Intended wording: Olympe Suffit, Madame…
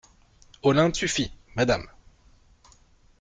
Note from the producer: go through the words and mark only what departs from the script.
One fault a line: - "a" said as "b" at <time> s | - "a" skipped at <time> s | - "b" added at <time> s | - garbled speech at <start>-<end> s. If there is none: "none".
none